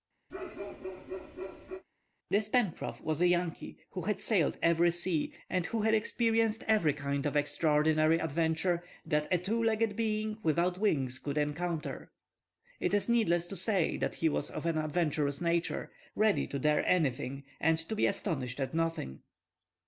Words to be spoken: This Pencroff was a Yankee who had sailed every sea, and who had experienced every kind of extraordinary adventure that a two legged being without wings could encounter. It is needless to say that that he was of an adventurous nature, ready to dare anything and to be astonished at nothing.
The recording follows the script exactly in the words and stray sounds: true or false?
false